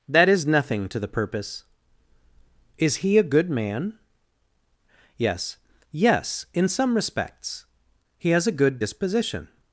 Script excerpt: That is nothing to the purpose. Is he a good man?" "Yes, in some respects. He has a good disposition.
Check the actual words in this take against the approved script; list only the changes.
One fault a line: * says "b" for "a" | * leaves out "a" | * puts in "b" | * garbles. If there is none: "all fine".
* puts in "yes"